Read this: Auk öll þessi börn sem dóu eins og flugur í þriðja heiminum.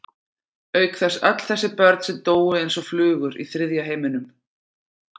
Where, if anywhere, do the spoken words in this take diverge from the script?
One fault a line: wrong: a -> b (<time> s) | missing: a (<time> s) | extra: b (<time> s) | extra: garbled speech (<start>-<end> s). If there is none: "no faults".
extra: þess (1.0 s)